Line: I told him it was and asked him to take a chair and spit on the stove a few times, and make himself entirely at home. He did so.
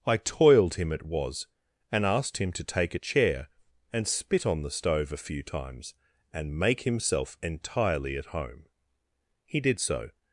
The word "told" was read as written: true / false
false